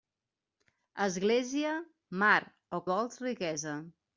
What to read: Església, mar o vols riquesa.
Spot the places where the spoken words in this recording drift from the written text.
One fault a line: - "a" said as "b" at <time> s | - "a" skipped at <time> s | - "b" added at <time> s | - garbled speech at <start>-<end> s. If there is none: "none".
none